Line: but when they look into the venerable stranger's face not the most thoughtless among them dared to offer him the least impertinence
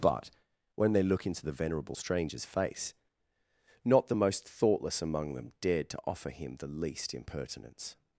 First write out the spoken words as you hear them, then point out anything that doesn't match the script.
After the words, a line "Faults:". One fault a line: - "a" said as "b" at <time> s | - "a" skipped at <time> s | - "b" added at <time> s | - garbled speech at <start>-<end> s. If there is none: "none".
but when they look into the venerable stranger's face not the most thoughtless among them dared to offer him the least impertinence
Faults:
none